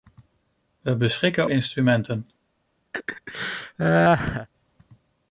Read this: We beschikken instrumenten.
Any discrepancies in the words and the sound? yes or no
yes